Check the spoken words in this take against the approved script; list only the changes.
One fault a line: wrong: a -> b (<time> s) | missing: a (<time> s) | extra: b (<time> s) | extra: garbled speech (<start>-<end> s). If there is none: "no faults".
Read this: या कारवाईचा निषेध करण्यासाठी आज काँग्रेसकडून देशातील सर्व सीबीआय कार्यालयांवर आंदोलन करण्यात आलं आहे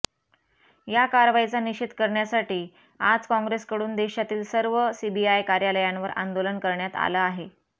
no faults